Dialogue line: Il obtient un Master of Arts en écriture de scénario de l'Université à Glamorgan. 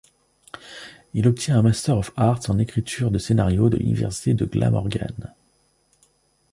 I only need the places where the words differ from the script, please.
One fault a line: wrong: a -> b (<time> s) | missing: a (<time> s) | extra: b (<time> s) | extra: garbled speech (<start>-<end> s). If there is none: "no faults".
wrong: à -> de (4.3 s)